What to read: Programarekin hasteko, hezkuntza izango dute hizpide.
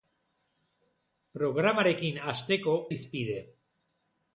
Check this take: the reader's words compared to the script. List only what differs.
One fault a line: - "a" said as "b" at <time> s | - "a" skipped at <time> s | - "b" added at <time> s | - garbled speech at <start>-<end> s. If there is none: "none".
- "hezkuntza izango dute" skipped at 2.8 s